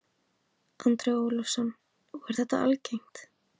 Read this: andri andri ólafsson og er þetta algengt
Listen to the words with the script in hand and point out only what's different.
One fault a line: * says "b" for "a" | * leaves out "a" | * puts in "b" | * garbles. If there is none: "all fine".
* leaves out "andri"